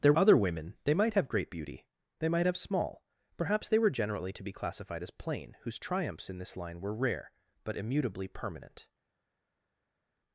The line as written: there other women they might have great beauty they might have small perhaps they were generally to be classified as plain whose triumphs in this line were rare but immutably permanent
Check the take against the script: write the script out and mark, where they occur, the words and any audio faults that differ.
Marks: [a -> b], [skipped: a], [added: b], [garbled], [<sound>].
there other women they might have great beauty they might have small perhaps they were generally to be classified as plain whose triumphs in this line were rare but immutably permanent